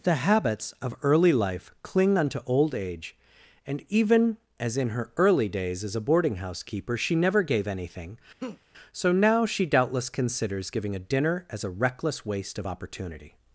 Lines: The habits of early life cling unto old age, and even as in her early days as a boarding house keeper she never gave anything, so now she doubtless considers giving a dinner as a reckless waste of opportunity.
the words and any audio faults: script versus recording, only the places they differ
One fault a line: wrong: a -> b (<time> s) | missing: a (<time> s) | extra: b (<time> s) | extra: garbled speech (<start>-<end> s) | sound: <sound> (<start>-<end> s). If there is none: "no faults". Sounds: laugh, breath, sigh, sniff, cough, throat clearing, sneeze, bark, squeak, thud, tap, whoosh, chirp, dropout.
sound: laugh (8.4-8.6 s)